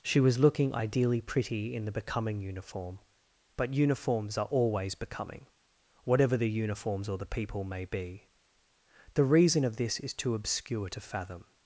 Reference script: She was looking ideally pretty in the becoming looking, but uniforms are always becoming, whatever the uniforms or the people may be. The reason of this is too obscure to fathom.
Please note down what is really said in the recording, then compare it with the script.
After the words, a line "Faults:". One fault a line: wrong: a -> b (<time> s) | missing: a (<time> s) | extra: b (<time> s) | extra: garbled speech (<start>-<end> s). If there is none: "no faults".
She was looking ideally pretty in the becoming uniform, but uniforms are always becoming, whatever the uniforms or the people may be. The reason of this is too obscure to fathom.
Faults:
wrong: looking -> uniform (2.4 s)